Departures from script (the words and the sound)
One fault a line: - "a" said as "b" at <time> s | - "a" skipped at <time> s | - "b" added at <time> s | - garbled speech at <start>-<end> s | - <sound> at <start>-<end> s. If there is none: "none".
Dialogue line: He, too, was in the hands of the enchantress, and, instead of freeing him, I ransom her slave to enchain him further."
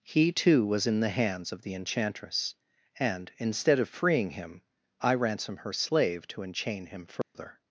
- dropout at 7.2-7.3 s